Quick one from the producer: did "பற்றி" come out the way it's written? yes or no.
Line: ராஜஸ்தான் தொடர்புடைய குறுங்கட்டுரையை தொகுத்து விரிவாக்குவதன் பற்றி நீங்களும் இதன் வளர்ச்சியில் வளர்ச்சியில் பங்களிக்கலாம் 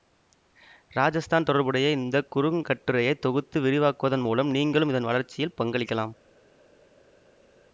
no